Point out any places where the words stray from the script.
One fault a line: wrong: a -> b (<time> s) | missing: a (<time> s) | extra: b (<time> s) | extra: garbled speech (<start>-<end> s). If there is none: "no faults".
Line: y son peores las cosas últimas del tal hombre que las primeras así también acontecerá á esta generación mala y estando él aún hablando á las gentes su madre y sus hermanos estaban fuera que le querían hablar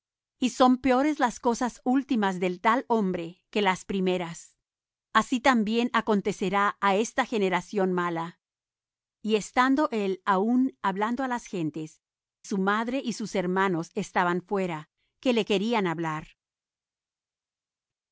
no faults